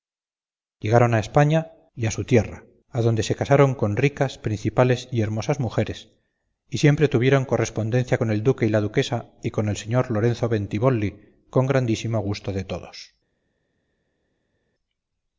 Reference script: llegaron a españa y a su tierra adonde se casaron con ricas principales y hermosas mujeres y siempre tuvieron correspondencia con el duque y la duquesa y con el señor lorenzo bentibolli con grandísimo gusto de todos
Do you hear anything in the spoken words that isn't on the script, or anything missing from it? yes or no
no